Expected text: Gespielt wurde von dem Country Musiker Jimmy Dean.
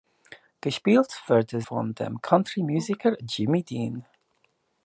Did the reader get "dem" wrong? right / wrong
right